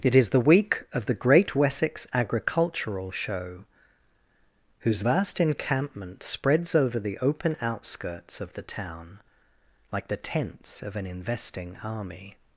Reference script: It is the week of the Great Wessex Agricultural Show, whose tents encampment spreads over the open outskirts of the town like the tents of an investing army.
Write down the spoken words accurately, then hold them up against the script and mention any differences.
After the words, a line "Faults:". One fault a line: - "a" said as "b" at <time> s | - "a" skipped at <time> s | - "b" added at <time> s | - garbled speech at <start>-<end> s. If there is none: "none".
It is the week of the Great Wessex Agricultural Show, whose vast encampment spreads over the open outskirts of the town like the tents of an investing army.
Faults:
- "tents" said as "vast" at 5.0 s